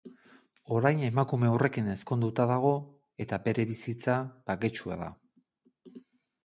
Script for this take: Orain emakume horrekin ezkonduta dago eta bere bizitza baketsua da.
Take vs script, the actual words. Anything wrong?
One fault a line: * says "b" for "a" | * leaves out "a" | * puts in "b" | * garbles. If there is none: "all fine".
all fine